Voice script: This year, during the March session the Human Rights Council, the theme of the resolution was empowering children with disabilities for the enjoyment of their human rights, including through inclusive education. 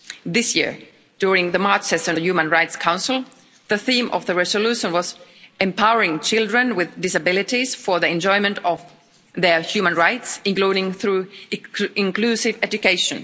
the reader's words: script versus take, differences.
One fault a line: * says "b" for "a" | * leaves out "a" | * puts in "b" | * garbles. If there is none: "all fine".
all fine